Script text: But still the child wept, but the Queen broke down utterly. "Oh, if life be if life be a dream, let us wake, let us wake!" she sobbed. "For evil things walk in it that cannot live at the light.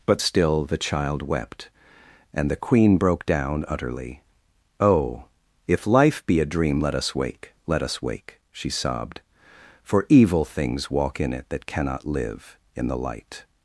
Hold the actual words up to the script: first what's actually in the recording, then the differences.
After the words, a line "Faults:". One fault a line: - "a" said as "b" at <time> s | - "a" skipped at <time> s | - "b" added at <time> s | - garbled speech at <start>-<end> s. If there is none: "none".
But still the child wept, and the Queen broke down utterly. "Oh, if life be a dream, let us wake, let us wake!" she sobbed. "For evil things walk in it that cannot live in the light.
Faults:
- "but" said as "and" at 2.3 s
- "if life be" skipped at 6.4 s
- "at" said as "in" at 12.7 s